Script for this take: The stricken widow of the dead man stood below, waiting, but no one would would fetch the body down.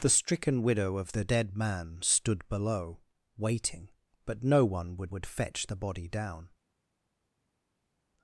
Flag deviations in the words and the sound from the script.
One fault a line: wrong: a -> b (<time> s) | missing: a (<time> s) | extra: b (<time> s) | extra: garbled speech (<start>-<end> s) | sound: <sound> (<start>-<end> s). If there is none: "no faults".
no faults